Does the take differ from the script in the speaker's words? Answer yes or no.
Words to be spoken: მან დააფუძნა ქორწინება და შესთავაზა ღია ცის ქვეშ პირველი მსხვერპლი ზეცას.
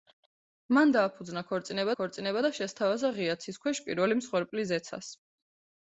yes